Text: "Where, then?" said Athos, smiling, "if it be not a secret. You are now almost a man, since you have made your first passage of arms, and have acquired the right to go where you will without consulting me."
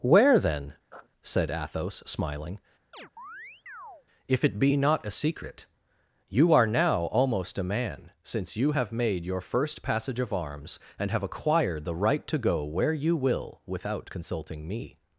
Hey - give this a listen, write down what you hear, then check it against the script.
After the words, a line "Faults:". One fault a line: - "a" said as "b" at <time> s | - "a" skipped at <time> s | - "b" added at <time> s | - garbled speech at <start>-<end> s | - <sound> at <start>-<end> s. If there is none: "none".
"Where, then?" said Athos, smiling, "if it be not a secret. You are now almost a man, since you have made your first passage of arms, and have acquired the right to go where you will without consulting me."
Faults:
- sniff at 0.9-1.1 s
- chirp at 2.9-4.1 s